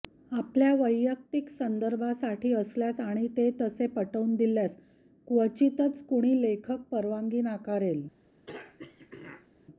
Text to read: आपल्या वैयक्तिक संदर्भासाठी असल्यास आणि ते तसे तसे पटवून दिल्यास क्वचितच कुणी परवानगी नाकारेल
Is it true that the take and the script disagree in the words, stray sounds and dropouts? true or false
true